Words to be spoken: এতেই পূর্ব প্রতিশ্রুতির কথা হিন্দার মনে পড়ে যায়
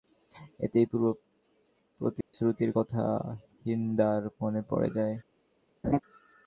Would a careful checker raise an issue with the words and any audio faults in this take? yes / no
yes